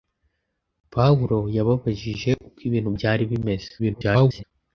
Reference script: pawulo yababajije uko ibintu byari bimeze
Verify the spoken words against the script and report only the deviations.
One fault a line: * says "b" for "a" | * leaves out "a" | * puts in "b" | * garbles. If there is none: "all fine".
* garbles